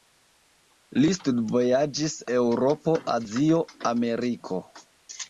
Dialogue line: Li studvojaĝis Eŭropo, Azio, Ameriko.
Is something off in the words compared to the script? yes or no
no